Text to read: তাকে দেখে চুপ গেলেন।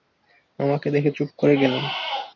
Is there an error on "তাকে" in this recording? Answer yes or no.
yes